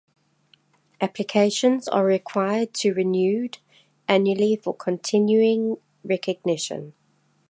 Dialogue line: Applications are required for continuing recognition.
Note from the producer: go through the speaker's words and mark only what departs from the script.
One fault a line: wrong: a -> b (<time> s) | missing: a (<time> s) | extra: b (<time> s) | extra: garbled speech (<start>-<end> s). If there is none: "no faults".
extra: to renewed annually (2.8 s)